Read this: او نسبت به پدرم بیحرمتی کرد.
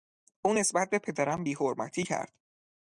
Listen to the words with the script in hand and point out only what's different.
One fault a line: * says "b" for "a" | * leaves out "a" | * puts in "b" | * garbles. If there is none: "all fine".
all fine